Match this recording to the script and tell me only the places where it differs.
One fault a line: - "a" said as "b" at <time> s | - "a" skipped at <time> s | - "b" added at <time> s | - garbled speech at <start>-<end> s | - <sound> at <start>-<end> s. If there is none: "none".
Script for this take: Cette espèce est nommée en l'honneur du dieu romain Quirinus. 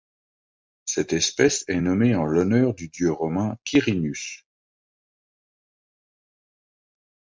none